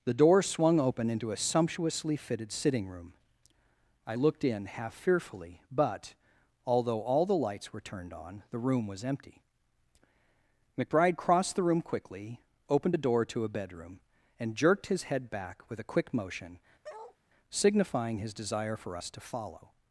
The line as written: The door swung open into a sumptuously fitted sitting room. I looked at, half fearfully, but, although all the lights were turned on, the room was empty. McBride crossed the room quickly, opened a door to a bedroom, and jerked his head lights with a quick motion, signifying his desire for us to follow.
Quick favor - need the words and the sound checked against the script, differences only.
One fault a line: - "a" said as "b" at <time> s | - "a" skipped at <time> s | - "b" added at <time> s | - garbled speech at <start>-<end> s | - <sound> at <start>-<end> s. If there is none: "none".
- "at" said as "in" at 4.4 s
- "lights" said as "back" at 15.3 s
- bark at 16.8-17.2 s